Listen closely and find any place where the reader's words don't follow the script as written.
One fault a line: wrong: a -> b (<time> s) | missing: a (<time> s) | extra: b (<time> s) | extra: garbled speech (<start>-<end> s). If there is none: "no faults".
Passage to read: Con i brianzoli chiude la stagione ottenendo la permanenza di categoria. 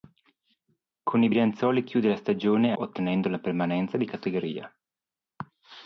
no faults